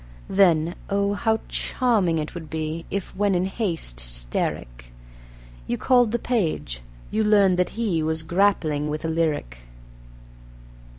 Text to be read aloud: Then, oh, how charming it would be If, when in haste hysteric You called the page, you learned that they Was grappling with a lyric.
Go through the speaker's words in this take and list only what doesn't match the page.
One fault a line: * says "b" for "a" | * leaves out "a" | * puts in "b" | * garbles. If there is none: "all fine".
* says "he" for "they"